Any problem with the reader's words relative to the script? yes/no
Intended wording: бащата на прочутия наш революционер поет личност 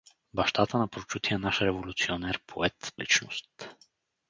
no